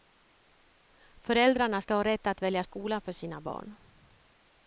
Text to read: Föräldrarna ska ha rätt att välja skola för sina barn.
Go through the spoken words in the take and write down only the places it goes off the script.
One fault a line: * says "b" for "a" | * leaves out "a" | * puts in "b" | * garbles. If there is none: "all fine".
all fine